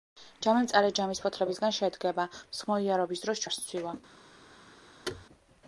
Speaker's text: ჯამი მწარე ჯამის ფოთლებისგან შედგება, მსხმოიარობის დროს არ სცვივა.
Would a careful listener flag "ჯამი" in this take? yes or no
no